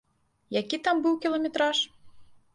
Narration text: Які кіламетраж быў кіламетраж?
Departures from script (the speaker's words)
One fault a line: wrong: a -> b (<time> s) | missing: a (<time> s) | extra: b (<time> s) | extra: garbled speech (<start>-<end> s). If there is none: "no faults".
wrong: кіламетраж -> там (0.9 s)